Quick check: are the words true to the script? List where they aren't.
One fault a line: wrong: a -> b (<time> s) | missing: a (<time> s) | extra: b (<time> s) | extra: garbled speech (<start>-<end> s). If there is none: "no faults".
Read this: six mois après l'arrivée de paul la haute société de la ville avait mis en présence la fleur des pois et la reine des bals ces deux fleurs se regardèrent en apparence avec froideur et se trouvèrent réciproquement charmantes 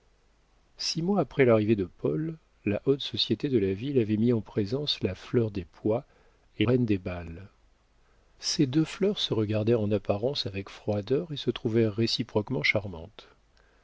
missing: la (6.7 s)